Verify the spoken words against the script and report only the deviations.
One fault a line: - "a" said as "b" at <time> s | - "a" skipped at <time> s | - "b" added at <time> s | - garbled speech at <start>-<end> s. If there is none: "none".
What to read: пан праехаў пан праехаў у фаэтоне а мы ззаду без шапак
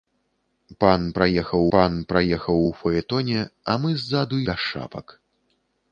none